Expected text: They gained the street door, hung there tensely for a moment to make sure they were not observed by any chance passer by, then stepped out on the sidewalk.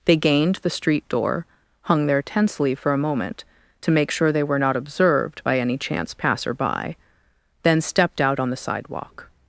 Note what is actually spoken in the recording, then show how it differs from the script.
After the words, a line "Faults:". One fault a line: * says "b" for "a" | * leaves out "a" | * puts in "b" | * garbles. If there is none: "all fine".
They gained the street door, hung there tensely for a moment to make sure they were not observed by any chance passer by, then stepped out on the sidewalk.
Faults:
all fine